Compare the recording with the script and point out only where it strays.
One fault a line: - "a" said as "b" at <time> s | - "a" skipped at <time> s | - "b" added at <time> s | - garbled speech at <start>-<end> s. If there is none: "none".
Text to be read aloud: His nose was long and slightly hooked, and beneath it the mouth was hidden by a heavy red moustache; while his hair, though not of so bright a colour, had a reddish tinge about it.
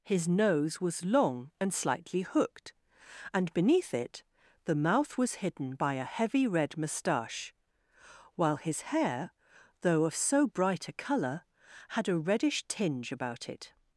- "not" skipped at 10.1 s